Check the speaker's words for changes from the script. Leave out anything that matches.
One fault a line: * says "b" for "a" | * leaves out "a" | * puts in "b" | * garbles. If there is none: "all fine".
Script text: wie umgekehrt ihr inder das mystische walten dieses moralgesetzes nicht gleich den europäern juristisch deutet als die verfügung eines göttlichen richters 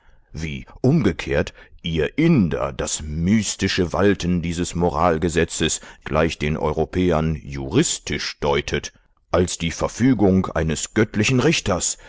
* leaves out "nicht"